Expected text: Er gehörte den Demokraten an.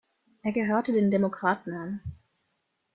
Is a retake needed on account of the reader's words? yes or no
no